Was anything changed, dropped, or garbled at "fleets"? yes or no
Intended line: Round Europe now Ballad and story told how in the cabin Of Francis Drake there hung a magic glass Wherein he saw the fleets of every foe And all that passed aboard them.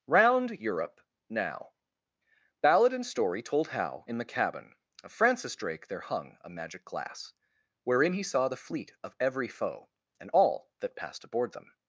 yes